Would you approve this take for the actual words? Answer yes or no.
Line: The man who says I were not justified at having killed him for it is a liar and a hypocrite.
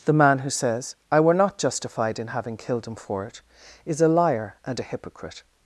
no